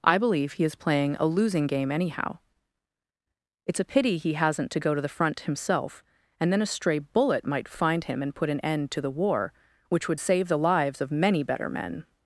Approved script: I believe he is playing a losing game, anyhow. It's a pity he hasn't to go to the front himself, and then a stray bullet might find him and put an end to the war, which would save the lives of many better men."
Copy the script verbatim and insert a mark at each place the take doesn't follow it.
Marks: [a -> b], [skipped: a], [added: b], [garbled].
I believe he is playing a losing game, anyhow. It's a pity he hasn't to go to the front himself, and then a stray bullet might find him and put an end to the war, which would save the lives of many better men."